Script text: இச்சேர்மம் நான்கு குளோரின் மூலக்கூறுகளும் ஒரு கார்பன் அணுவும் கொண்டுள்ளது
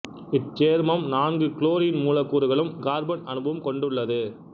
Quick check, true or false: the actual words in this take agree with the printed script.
false